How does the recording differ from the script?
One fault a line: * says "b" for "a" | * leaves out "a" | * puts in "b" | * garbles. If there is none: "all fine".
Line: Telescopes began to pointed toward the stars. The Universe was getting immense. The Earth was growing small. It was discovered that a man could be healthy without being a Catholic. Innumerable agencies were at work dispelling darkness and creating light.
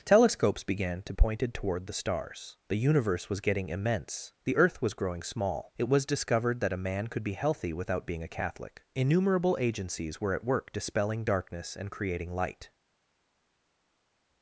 all fine